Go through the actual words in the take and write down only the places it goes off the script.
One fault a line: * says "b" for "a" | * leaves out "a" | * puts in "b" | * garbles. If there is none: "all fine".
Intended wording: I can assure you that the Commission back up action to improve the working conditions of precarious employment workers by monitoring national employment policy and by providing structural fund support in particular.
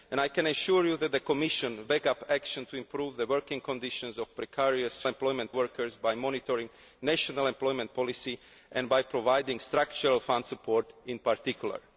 all fine